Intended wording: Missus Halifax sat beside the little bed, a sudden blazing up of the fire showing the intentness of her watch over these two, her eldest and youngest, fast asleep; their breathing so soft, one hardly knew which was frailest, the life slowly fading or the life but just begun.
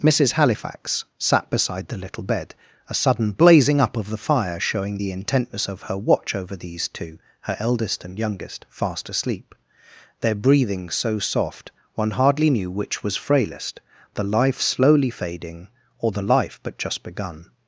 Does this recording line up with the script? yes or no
yes